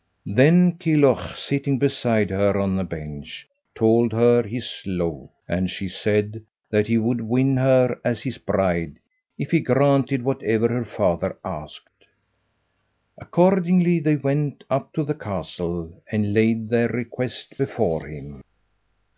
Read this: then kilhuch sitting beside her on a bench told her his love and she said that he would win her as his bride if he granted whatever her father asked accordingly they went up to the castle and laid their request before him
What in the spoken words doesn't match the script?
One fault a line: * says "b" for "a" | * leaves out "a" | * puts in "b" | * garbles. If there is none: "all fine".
all fine